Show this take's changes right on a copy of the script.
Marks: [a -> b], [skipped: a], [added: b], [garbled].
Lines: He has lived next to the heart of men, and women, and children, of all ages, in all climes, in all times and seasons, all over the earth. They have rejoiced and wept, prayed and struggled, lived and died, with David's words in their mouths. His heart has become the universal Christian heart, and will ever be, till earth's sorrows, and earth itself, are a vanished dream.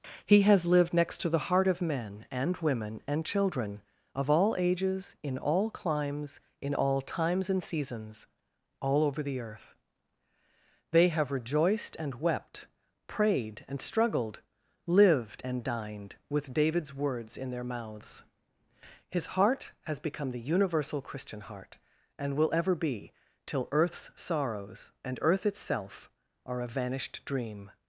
He has lived next to the heart of men, and women, and children, of all ages, in all climes, in all times and seasons, all over the earth. They have rejoiced and wept, prayed and struggled, lived and [died, -> dined] with David's words in their mouths. His heart has become the universal Christian heart, and will ever be, till earth's sorrows, and earth itself, are a vanished dream.